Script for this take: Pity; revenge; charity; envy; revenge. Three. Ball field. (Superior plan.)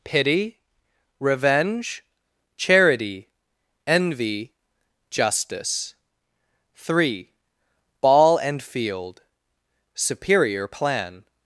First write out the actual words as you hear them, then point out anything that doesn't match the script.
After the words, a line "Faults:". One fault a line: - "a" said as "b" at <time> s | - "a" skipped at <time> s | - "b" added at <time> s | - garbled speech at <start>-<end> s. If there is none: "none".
Pity; revenge; charity; envy; justice. Three. Ball and field. (Superior plan.)
Faults:
- "revenge" said as "justice" at 5.1 s
- "and" added at 8.4 s